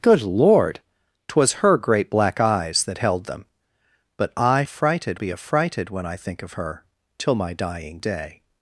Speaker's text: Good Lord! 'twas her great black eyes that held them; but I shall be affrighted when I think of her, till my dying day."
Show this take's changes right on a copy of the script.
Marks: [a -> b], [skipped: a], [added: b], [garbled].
Good Lord! 'twas her great black eyes that held them; but I [shall -> affrighted] be affrighted when I think of her, till my dying day."